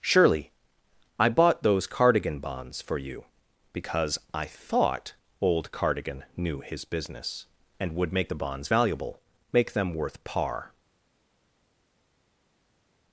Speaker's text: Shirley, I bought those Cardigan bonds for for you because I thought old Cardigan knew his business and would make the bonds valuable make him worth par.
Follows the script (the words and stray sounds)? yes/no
no